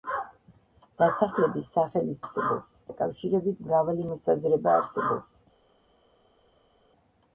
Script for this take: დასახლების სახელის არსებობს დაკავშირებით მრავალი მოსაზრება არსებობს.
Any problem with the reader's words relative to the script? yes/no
no